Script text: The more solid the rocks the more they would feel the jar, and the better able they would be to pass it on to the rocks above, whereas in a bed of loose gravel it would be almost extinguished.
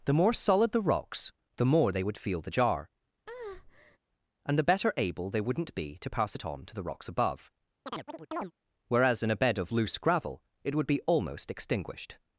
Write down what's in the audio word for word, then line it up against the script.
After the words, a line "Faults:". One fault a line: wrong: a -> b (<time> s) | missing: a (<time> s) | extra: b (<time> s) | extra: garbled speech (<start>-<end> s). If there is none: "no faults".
The more solid the rocks the more they would feel the jar, and the better able they wouldn't be to pass it on to the rocks above, whereas in a bed of loose gravel it would be almost extinguished.
Faults:
wrong: would -> wouldn't (5.4 s)